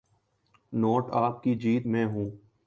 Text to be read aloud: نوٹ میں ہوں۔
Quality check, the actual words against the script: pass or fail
fail